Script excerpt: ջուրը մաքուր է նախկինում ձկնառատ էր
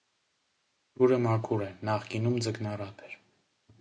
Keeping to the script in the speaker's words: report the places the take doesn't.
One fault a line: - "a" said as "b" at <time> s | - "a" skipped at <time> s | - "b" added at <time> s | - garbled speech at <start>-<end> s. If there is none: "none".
none